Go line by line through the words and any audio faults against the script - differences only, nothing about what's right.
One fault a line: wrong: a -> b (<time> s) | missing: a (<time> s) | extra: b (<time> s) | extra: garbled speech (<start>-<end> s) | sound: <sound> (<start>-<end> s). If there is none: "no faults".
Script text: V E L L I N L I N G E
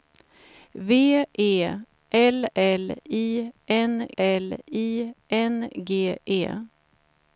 no faults